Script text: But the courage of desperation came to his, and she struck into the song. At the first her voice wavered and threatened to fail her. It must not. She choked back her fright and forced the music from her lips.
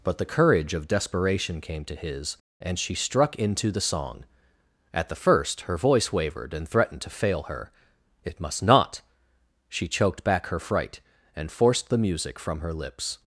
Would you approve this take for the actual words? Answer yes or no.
yes